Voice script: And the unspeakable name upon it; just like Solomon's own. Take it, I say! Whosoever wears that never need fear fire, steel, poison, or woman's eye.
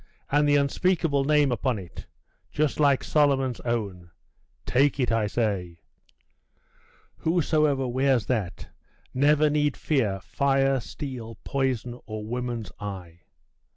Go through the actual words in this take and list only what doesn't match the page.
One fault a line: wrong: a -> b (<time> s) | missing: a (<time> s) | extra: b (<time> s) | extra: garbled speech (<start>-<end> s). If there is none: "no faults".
no faults